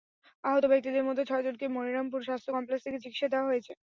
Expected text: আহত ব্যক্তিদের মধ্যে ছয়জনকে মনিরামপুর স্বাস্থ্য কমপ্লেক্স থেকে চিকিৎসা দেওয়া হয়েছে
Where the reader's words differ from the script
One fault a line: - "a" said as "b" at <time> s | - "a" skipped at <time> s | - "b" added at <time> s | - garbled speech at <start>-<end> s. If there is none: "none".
none